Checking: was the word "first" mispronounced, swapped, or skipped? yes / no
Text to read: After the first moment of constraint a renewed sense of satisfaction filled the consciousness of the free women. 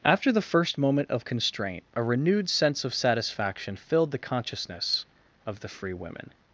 no